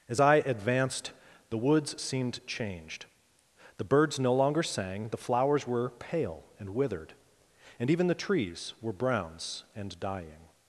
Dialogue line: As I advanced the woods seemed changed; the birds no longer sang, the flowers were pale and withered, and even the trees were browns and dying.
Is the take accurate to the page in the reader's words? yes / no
yes